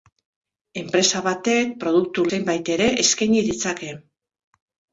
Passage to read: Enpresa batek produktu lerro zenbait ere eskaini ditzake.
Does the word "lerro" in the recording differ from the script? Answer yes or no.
yes